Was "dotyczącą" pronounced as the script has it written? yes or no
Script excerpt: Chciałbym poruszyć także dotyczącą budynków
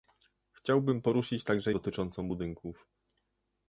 yes